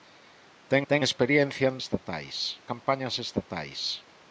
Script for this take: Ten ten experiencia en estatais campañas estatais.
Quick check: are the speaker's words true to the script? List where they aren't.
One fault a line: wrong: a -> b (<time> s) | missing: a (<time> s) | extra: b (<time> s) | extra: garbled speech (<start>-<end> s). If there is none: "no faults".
no faults